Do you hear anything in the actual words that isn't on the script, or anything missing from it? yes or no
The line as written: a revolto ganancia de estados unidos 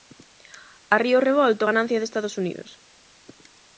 yes